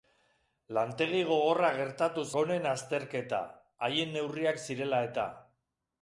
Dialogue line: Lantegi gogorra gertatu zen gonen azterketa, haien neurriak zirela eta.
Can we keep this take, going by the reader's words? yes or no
no